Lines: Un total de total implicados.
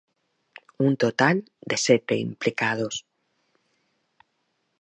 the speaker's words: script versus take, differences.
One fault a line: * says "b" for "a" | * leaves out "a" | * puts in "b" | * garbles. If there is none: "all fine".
* says "sete" for "total"